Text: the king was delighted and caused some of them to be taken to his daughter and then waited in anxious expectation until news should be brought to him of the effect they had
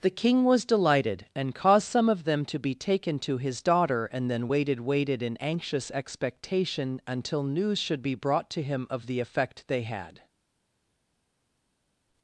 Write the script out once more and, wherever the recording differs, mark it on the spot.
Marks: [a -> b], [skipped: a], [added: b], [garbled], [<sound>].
the king was delighted and caused some of them to be taken to his daughter and then waited [added: waited] in anxious expectation until news should be brought to him of the effect they had